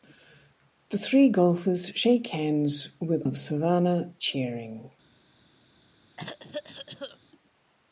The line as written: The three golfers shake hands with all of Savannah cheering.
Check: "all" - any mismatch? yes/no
yes